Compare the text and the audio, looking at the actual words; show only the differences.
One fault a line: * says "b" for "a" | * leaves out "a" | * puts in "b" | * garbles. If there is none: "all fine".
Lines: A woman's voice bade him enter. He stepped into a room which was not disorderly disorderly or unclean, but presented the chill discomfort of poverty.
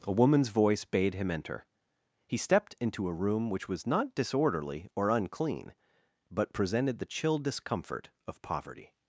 * leaves out "disorderly"